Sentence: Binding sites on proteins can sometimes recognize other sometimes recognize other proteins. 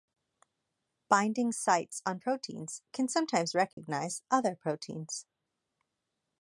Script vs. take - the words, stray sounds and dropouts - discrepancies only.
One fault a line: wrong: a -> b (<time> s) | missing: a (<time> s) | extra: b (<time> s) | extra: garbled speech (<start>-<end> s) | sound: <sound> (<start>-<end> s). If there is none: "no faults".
sound: dropout (3.7-3.8 s)
missing: sometimes recognize other (4.5 s)